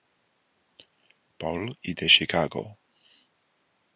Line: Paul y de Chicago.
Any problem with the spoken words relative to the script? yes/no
no